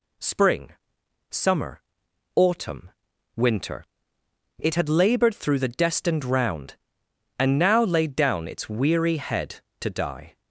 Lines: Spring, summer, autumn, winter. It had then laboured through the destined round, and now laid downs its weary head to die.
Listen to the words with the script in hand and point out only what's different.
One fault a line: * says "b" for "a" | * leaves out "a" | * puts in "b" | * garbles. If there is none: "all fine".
* leaves out "then"
* says "down" for "downs"